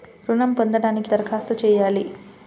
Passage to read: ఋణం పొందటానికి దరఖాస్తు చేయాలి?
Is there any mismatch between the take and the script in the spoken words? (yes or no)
no